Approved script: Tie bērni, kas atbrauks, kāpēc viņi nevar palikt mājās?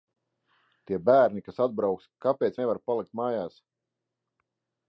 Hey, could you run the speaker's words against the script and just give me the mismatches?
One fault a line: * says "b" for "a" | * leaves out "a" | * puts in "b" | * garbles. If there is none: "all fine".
* leaves out "viņi"